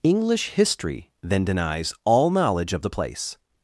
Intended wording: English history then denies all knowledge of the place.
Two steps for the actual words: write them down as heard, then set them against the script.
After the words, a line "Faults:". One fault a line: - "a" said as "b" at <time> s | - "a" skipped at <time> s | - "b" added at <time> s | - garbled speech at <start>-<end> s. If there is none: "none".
English history then denies all knowledge of the place.
Faults:
none